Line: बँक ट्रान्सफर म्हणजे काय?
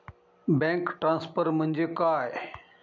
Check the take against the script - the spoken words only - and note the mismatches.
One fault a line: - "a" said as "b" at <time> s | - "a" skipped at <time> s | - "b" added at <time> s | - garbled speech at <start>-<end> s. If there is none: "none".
none